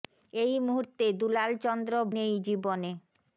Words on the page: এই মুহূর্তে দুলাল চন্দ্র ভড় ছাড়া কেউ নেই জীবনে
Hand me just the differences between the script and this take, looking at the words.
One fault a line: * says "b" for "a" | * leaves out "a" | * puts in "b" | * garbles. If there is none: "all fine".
* leaves out "ভড় ছাড়া কেউ"